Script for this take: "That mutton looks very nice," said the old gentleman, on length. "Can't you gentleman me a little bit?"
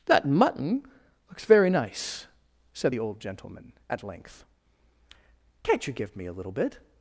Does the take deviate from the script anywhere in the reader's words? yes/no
yes